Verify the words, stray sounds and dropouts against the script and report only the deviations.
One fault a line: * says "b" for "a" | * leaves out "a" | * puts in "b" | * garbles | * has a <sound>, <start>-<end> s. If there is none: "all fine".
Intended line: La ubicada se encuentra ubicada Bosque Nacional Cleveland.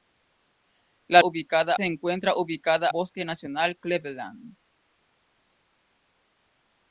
all fine